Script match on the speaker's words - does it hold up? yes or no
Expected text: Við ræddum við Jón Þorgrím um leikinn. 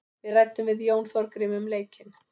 yes